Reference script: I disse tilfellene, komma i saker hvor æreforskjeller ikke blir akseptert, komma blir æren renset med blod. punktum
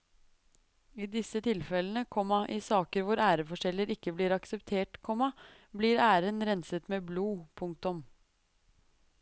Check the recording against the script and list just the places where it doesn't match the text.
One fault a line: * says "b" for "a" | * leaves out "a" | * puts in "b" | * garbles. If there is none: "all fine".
all fine